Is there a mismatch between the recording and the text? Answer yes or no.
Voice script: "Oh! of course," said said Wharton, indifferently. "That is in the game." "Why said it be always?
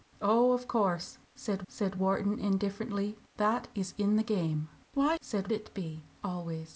no